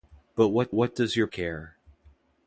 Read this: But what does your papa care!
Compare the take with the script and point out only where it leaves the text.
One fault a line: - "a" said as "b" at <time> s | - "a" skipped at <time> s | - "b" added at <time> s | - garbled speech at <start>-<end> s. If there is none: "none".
- "what" added at 0.7 s
- "papa" skipped at 1.3 s